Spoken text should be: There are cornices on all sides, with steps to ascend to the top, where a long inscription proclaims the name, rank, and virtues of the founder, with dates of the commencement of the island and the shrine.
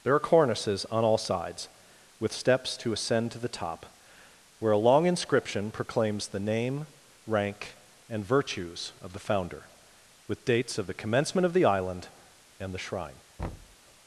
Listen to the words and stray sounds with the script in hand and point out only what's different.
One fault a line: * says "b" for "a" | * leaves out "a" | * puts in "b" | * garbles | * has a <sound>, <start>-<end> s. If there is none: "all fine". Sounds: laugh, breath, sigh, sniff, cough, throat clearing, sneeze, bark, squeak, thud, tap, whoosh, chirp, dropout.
* has a thud, 13.4-13.8 s